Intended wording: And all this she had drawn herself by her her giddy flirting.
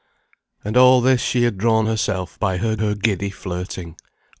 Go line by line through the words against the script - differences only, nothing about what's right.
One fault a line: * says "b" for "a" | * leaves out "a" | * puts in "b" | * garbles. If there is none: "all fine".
all fine